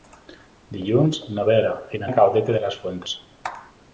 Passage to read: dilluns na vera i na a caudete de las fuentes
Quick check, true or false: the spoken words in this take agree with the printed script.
true